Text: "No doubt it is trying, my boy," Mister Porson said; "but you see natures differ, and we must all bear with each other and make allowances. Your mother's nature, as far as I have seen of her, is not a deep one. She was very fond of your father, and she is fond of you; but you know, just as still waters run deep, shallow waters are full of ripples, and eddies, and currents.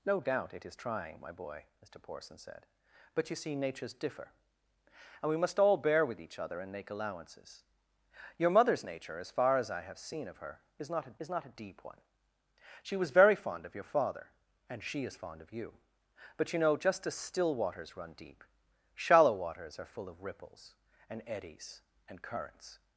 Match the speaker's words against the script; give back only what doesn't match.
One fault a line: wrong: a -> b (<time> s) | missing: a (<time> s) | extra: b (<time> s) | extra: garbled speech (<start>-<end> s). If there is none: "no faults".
extra: is not a (11.2 s)